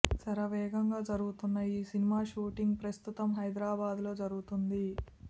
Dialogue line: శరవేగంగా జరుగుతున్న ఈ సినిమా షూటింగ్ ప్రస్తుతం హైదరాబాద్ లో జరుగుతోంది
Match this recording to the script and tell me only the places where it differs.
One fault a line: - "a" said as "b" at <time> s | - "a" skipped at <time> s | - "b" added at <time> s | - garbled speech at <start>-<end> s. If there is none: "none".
none